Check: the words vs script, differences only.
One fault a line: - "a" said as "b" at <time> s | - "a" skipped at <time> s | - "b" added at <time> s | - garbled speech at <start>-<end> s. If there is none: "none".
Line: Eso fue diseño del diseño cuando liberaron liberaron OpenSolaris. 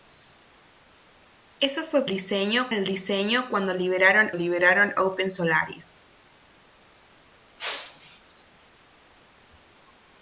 none